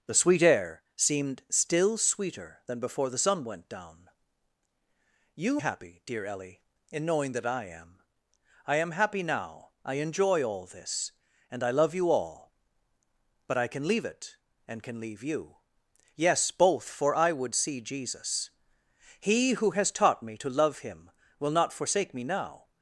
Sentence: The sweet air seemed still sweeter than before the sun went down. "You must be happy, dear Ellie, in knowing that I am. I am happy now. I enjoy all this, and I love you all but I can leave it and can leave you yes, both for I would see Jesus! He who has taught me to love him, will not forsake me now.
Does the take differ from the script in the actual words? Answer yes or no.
yes